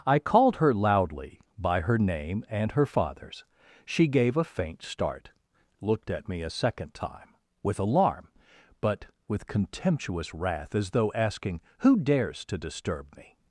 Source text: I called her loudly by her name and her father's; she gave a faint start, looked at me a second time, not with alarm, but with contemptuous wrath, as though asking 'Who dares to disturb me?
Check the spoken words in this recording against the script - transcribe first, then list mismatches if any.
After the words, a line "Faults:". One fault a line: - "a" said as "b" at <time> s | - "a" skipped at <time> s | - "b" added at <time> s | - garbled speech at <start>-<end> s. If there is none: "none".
I called her loudly by her name and her father's; she gave a faint start, looked at me a second time, with alarm, but with contemptuous wrath, as though asking 'Who dares to disturb me?
Faults:
- "not" skipped at 7.3 s